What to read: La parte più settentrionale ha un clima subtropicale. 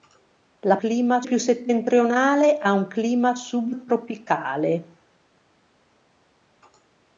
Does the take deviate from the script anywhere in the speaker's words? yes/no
yes